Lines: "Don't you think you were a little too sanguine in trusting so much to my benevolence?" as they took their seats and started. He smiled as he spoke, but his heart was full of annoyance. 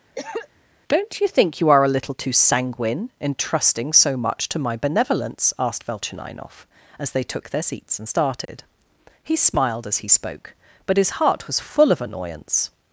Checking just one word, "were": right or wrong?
wrong